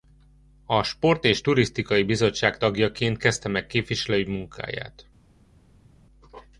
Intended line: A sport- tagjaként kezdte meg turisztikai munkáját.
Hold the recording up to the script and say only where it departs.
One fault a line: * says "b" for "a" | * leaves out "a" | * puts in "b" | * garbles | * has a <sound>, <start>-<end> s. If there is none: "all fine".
* puts in "és turisztikai bizottság"
* says "képviselői" for "turisztikai"